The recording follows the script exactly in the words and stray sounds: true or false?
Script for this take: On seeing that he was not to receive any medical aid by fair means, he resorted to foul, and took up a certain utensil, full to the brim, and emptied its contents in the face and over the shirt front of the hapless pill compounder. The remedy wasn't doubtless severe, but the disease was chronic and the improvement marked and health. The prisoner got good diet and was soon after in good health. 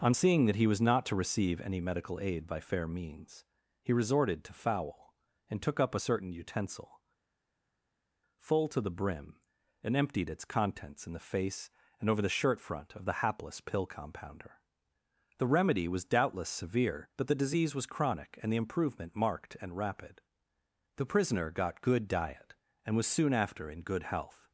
false